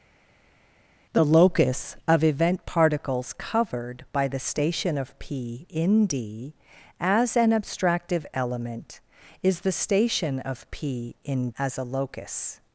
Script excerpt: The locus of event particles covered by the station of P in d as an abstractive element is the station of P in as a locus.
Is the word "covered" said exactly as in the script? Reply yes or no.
yes